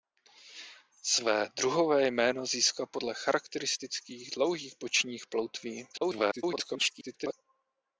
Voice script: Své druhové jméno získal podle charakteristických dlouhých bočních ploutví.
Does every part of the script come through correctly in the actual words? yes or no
no